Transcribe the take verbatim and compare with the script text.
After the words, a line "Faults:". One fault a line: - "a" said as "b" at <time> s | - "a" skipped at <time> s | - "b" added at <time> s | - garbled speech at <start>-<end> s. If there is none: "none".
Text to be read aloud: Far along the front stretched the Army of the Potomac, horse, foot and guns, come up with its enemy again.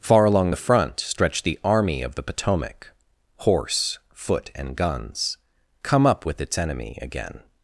Far along the front stretched the Army of the Potomac, horse, foot and guns, come up with its enemy again.
Faults:
none